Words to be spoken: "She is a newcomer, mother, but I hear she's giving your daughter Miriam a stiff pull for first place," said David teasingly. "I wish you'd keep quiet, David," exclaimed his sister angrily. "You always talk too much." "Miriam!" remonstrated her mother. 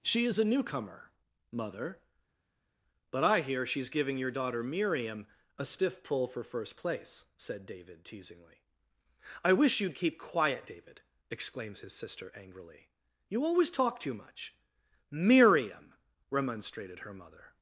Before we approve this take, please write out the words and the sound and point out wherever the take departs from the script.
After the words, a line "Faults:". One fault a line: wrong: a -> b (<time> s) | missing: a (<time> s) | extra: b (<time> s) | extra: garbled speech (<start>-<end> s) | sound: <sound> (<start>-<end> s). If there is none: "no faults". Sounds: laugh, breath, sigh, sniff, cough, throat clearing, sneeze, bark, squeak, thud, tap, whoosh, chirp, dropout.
"She is a newcomer, mother, but I hear she's giving your daughter Miriam a stiff pull for first place," said David teasingly. "I wish you'd keep quiet, David," exclaims his sister angrily. "You always talk too much." "Miriam!" remonstrated her mother.
Faults:
wrong: exclaimed -> exclaims (11.3 s)